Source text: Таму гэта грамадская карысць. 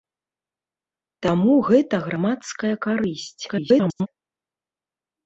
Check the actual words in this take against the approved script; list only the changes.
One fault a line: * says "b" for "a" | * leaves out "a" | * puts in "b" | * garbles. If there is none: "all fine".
* garbles